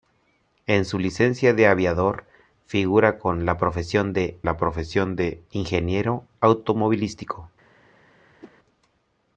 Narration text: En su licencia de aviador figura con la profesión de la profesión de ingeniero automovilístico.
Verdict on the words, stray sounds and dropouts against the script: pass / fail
fail